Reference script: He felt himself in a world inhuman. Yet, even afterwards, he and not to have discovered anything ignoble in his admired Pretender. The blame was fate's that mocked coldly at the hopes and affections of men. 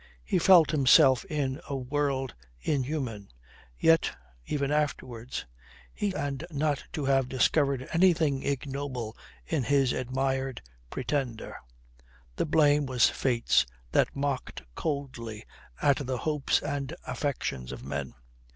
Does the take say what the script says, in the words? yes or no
yes